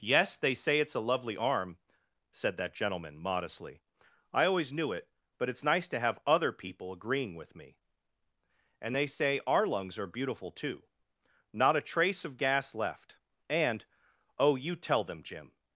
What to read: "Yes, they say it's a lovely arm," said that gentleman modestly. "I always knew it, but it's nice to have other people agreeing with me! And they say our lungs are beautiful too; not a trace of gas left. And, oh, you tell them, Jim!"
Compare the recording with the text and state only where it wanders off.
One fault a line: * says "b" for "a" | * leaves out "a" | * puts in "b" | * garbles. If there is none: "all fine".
all fine